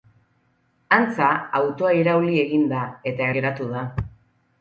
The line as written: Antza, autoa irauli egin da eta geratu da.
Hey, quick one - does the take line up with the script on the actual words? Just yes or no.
yes